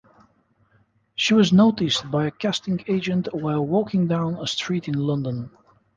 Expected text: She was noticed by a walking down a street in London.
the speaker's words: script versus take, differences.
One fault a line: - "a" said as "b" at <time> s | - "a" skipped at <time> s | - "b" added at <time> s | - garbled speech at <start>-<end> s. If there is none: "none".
- "casting agent while" added at 2.3 s